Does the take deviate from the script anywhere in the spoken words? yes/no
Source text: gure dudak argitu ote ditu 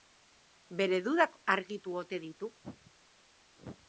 yes